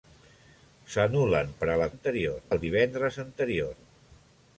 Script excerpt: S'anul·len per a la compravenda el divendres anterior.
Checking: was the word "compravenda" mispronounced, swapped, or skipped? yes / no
yes